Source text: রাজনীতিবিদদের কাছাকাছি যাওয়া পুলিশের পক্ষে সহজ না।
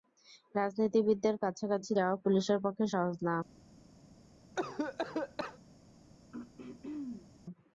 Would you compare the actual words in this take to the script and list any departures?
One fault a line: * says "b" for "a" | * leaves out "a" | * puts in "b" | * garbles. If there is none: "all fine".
all fine